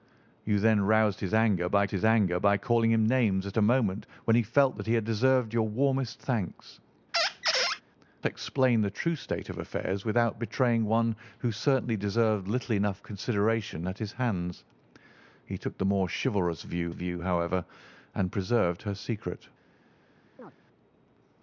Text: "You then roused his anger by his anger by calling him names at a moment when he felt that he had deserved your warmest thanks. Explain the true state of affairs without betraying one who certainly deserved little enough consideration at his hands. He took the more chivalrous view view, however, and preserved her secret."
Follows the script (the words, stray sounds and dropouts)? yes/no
no